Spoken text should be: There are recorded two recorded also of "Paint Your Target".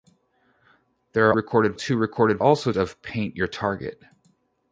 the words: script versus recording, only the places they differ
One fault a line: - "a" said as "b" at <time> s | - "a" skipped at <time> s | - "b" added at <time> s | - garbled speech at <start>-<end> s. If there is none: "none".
none